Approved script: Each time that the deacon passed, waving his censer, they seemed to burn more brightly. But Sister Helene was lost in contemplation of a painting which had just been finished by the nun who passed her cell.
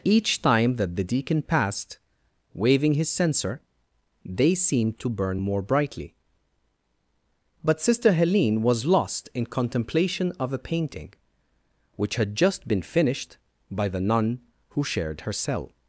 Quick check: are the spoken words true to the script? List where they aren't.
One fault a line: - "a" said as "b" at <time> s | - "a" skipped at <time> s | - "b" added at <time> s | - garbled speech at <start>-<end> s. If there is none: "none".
- "passed" said as "shared" at 14.8 s